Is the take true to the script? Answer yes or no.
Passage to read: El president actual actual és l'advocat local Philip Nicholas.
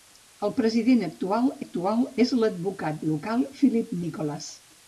yes